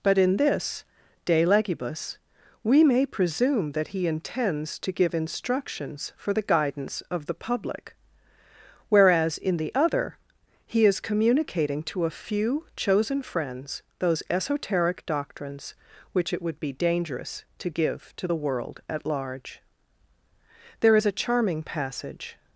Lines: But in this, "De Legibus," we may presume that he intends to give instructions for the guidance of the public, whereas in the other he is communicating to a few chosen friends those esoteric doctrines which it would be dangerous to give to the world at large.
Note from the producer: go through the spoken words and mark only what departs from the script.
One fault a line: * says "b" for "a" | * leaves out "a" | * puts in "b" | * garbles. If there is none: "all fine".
* puts in "There is a charming passage"